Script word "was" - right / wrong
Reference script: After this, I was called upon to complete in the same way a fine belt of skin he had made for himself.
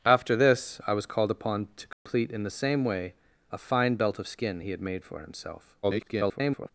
right